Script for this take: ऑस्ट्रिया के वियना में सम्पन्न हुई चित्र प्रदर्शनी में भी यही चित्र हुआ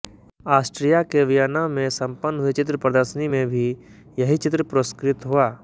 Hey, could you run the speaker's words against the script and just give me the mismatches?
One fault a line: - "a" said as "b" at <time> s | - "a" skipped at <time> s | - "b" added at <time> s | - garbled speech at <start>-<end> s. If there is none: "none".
- "पुरस्कृत" added at 4.6 s